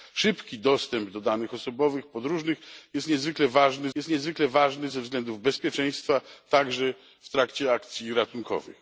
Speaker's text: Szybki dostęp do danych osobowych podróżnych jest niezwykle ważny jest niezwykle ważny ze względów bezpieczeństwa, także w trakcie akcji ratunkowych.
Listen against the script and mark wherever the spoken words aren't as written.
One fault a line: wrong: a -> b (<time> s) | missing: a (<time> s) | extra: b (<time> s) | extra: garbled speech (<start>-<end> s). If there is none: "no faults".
no faults